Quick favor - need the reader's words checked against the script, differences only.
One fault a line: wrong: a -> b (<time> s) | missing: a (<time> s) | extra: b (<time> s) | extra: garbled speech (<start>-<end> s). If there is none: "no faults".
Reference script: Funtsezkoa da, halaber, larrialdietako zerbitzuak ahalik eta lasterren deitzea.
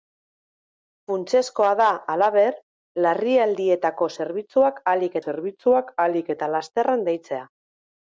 extra: zerbitzuak ahalik (5.2 s)